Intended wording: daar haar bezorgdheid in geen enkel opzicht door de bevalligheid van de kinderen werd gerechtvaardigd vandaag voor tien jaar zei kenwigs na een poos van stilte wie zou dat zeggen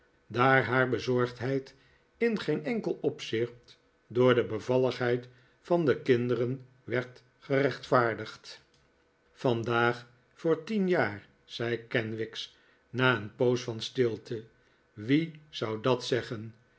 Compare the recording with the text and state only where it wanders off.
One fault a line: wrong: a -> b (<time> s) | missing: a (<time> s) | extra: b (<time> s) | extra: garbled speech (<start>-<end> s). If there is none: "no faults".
no faults